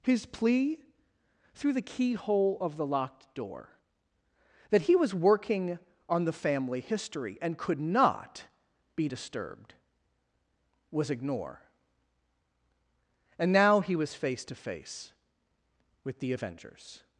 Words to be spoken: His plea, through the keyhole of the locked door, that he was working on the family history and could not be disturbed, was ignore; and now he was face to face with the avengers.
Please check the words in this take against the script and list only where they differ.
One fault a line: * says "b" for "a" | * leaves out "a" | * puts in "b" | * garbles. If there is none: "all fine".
all fine